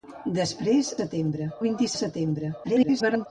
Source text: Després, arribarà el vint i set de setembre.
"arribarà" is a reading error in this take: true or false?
true